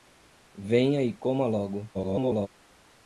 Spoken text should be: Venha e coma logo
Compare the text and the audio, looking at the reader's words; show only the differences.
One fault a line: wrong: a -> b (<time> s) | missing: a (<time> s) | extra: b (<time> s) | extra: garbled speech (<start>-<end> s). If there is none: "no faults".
extra: garbled speech (1.9-2.5 s)